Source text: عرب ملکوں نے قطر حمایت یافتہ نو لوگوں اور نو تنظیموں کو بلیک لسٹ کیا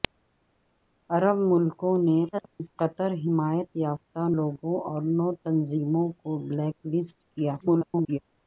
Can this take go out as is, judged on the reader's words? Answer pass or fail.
fail